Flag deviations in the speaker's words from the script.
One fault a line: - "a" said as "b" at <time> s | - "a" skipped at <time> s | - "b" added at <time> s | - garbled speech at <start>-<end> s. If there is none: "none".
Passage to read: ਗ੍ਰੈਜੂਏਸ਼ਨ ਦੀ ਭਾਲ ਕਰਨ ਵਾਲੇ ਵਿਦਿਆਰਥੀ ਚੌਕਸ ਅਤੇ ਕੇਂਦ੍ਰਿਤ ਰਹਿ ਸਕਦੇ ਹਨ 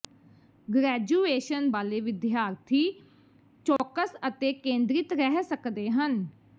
- "ਦੀ ਭਾਲ ਕਰਨ" skipped at 1.7 s